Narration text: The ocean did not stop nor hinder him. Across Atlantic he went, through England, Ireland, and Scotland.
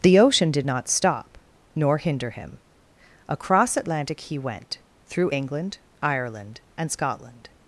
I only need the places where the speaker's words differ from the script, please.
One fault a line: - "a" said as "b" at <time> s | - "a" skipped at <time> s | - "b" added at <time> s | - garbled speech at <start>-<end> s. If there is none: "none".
none